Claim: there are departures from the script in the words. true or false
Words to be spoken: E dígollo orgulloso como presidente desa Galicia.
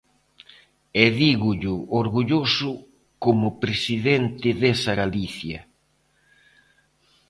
false